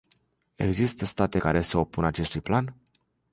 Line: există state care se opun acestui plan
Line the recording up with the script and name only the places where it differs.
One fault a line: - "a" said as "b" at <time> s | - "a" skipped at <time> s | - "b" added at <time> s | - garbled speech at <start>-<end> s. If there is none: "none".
none